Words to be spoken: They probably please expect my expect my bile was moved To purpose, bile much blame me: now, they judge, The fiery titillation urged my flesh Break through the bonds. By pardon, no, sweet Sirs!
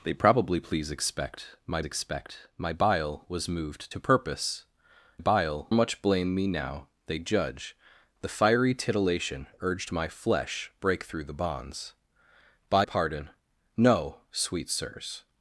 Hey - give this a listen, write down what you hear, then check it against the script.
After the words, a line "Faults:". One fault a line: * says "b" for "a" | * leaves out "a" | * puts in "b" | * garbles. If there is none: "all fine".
They probably please expect my expect my bile was moved To purpose, bile much blame me: now, they judge, The fiery titillation urged my flesh Break through the bonds. By pardon, no, sweet Sirs!
Faults:
all fine